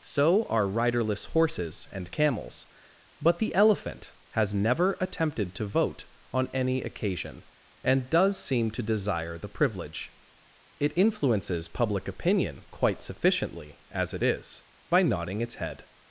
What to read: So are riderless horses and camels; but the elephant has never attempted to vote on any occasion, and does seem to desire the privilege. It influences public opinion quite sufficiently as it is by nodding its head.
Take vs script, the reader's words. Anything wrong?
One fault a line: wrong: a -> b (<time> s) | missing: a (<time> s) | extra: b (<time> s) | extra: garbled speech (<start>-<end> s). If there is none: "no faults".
no faults